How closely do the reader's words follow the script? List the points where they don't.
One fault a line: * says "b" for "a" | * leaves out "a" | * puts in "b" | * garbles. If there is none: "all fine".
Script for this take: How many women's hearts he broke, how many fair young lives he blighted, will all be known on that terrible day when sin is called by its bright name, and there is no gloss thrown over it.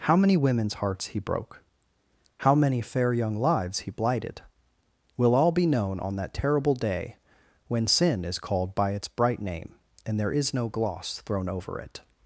all fine